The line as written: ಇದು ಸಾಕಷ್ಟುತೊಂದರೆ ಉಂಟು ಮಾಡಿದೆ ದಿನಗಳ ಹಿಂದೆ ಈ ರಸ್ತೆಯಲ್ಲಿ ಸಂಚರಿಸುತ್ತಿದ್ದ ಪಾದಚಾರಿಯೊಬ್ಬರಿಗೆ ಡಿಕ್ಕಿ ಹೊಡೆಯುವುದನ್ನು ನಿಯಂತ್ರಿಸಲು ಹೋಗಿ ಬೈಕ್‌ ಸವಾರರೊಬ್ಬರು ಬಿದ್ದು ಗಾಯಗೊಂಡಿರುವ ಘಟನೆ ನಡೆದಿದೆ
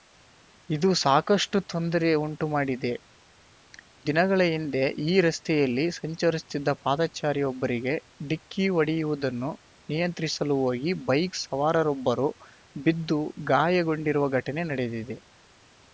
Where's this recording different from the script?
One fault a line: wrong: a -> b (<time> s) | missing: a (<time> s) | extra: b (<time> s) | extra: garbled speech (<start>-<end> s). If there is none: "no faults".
no faults